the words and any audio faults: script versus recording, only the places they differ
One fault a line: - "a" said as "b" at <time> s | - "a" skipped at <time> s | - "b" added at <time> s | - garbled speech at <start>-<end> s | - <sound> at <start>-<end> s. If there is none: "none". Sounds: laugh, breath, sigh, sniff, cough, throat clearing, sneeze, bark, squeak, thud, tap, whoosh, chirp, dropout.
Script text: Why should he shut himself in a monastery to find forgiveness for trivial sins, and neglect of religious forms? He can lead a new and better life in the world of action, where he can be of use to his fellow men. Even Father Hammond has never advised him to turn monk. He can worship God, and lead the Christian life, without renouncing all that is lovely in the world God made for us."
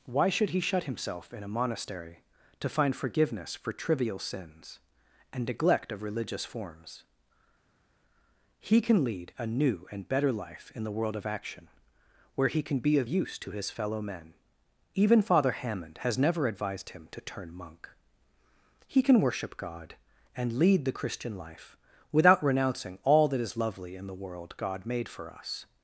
none